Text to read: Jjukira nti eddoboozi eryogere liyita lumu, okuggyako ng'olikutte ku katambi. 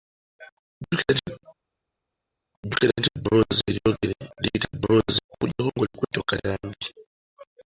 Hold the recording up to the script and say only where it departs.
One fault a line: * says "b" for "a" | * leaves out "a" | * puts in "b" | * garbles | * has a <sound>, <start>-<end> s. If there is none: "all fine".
* says "eddoboozi" for "lumu"